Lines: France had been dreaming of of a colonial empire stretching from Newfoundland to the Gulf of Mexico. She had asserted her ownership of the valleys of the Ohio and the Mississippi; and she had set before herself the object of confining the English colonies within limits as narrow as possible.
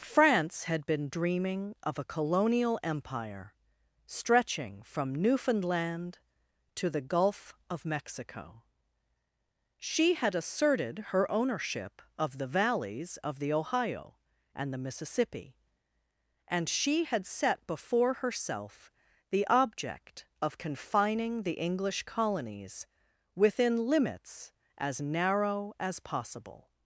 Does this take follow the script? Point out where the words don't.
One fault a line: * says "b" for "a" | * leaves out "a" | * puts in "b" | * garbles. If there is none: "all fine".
* leaves out "of"